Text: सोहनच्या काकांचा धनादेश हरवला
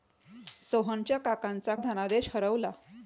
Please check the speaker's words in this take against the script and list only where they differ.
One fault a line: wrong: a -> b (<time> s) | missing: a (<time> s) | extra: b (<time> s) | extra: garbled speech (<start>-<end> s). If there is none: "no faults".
no faults